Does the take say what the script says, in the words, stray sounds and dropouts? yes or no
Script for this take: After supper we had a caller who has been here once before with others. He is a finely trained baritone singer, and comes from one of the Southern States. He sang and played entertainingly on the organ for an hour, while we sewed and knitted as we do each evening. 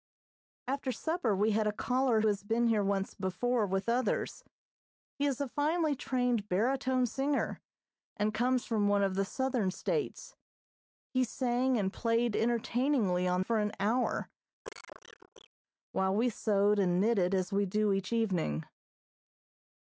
no